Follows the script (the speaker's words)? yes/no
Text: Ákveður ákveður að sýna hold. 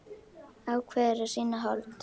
no